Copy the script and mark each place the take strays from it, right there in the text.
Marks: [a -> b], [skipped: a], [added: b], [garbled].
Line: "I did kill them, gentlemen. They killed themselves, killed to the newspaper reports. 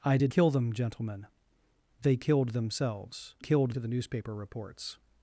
"I did kill them, gentlemen. They killed themselves, killed to the newspaper reports.